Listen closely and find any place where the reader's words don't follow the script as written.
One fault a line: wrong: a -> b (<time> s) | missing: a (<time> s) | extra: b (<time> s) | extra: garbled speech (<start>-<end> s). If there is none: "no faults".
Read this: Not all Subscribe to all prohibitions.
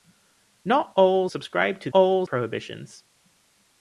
no faults